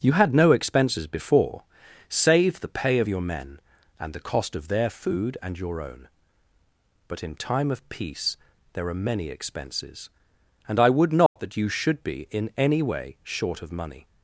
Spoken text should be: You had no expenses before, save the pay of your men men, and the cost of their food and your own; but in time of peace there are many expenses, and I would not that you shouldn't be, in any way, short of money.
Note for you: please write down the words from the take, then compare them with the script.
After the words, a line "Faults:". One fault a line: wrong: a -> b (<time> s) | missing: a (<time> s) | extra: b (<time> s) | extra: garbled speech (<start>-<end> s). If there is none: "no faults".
You had no expenses before, save the pay of your men, and the cost of their food and your own; but in time of peace there are many expenses, and I would not that you should be, in any way, short of money.
Faults:
missing: men (3.6 s)
wrong: shouldn't -> should (11.7 s)